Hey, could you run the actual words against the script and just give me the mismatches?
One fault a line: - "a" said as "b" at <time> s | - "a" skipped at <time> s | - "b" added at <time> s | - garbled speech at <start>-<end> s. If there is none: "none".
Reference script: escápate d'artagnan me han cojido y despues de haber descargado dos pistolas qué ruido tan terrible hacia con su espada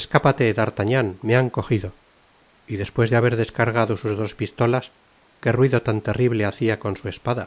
- "sus" added at 4.0 s